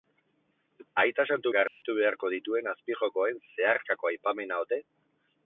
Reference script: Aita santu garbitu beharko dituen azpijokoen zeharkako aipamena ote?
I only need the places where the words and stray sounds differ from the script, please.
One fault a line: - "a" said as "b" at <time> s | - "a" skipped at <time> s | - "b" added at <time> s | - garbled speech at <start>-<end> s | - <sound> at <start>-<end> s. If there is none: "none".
- dropout at 1.7-1.8 s